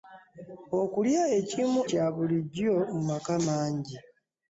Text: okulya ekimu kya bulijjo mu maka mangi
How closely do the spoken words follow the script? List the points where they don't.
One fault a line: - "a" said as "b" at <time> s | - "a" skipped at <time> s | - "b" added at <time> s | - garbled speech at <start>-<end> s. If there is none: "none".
none